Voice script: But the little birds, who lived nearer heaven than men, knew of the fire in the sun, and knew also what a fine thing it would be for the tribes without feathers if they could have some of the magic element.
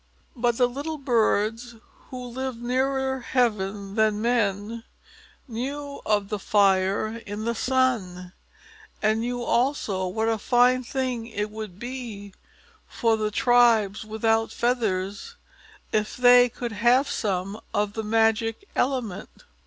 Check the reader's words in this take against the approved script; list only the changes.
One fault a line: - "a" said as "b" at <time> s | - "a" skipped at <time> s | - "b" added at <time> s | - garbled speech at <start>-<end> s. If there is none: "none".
none